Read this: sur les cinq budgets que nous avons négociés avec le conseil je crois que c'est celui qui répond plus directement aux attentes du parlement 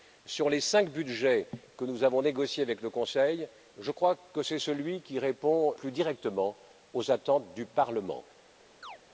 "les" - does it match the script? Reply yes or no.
yes